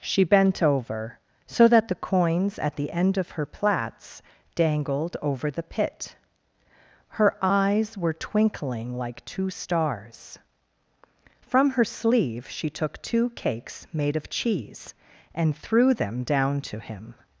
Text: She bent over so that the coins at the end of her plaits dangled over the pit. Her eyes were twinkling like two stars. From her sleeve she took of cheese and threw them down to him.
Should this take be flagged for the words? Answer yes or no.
yes